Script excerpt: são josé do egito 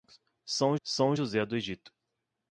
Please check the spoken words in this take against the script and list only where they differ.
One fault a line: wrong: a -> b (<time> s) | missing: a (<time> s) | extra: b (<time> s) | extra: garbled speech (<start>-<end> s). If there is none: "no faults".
extra: são (0.8 s)